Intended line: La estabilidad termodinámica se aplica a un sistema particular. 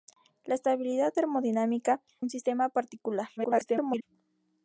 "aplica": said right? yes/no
no